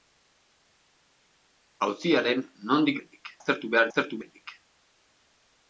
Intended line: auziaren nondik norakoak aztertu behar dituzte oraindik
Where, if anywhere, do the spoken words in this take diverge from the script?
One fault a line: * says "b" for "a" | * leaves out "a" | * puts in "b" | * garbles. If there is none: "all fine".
* says "oraindik" for "norakoak"
* says "aztertu" for "dituzte"